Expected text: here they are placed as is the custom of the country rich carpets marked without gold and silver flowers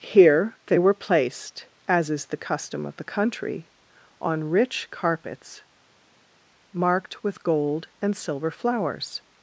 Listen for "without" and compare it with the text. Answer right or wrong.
wrong